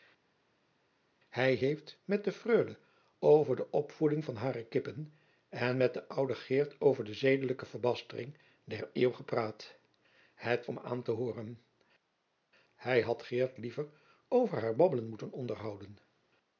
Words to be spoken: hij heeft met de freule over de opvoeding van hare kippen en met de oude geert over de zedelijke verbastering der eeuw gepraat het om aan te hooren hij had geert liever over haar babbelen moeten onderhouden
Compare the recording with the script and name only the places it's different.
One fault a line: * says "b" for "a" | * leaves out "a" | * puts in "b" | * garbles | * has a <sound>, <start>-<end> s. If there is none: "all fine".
all fine